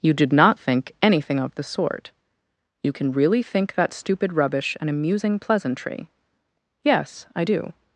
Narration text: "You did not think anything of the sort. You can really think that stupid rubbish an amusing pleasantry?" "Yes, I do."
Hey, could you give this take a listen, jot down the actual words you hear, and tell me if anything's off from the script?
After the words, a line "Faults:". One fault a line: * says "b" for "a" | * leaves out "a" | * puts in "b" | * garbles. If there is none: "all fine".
"You did not think anything of the sort. You can really think that stupid rubbish an amusing pleasantry?" "Yes, I do."
Faults:
all fine